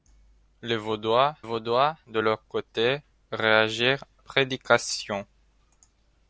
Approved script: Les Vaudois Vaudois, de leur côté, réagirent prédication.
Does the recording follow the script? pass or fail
pass